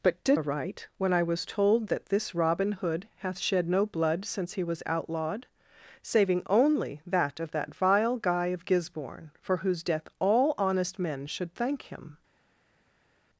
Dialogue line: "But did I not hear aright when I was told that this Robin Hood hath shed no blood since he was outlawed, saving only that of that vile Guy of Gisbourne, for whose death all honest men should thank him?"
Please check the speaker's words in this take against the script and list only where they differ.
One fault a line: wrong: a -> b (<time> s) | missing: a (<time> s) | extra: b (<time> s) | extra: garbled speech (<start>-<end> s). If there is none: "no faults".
missing: I not hear (0.4 s)